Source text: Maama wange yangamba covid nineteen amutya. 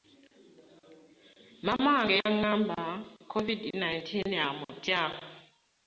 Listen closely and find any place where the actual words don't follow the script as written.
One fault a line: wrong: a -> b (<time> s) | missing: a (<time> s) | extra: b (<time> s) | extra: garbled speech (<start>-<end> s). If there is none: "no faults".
no faults